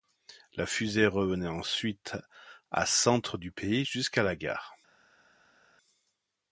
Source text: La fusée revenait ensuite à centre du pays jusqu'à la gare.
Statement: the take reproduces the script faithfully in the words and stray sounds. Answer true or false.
true